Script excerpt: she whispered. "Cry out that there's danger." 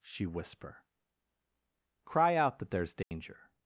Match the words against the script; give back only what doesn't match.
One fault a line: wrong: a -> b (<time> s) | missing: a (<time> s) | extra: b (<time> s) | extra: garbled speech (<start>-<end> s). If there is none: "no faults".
wrong: whispered -> whisper (0.2 s)